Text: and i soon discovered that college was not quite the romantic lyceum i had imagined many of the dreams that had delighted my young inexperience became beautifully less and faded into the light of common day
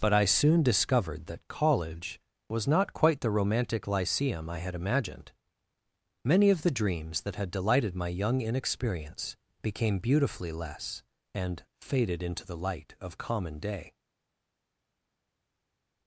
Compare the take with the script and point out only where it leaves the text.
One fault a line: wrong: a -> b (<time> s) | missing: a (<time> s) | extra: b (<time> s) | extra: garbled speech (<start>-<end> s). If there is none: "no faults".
wrong: and -> but (0.0 s)